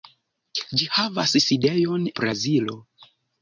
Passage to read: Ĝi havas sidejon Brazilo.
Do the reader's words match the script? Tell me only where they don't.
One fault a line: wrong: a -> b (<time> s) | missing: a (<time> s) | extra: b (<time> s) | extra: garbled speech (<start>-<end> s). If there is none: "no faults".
no faults